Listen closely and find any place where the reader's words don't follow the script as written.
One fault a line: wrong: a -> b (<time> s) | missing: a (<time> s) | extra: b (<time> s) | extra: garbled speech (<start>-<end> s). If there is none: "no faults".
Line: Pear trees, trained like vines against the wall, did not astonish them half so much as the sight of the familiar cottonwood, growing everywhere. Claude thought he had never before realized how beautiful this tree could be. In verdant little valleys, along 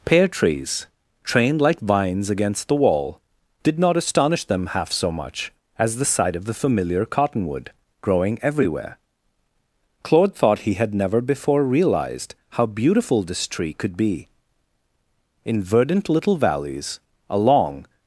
no faults